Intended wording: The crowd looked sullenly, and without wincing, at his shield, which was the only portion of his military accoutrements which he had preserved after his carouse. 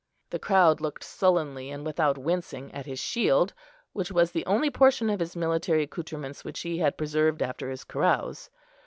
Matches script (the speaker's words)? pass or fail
pass